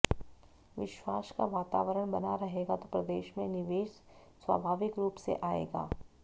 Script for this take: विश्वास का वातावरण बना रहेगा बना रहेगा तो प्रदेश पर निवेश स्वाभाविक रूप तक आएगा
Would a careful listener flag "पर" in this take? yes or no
yes